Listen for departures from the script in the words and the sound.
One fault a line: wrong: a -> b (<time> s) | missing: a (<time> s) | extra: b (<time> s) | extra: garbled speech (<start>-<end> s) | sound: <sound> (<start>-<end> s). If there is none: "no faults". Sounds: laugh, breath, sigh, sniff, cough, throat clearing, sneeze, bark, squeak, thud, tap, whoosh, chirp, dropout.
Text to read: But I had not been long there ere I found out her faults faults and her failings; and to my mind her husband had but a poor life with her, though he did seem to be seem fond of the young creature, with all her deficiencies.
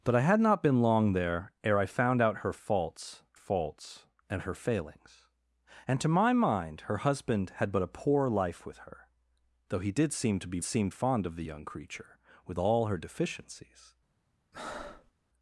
sound: breath (14.5-15.1 s)